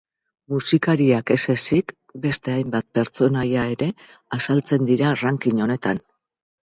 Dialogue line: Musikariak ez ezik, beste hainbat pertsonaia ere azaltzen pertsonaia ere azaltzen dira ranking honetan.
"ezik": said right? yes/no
yes